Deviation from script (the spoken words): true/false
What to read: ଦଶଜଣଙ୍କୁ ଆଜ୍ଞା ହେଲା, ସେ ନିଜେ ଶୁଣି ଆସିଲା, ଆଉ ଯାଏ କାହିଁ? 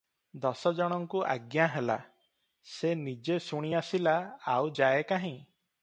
false